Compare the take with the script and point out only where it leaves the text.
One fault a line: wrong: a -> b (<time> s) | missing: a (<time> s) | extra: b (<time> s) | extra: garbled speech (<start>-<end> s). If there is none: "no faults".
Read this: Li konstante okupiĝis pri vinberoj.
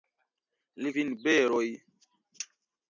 missing: konstante okupiĝis pri (0.9 s)